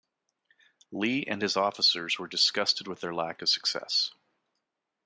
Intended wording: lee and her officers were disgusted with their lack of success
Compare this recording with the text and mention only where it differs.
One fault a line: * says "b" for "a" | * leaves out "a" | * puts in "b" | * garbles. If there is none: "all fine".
* says "his" for "her"